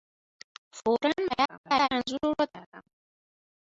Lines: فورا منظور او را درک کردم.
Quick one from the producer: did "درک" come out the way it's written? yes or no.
no